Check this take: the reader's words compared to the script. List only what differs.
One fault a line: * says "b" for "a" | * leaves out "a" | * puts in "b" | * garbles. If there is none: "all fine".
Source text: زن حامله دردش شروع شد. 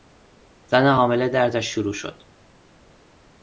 all fine